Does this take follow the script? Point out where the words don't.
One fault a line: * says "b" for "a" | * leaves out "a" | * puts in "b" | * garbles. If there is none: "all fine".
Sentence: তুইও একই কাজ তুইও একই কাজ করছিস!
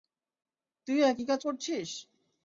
* leaves out "তুইও একই কাজ"